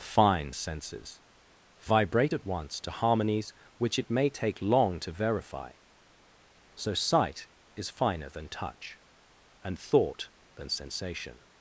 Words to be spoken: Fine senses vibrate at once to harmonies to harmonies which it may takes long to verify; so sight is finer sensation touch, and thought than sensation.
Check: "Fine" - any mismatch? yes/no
no